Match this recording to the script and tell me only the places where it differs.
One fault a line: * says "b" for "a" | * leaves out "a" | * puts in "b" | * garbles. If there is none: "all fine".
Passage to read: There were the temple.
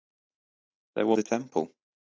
all fine